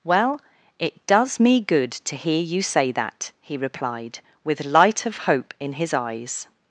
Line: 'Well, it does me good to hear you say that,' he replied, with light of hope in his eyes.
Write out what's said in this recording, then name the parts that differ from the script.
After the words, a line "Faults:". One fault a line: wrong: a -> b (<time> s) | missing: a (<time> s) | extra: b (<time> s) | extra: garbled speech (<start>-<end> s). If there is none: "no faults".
'Well, it does me good to hear you say that,' he replied, with light of hope in his eyes.
Faults:
no faults